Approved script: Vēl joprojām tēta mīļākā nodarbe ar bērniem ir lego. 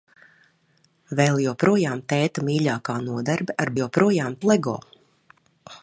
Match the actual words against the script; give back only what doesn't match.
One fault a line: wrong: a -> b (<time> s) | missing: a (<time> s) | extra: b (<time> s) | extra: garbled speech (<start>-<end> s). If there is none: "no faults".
wrong: bērniem -> joprojām (3.8 s)